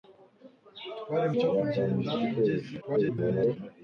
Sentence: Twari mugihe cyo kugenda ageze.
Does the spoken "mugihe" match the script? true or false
false